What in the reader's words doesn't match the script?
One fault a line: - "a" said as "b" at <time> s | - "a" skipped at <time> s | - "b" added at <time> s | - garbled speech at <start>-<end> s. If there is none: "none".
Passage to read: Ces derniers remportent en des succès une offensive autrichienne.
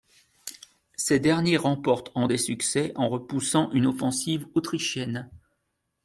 - "en repoussant" added at 2.9 s